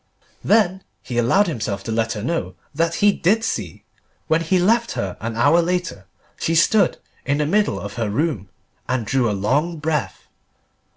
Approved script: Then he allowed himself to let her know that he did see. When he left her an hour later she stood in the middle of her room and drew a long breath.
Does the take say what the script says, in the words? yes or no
yes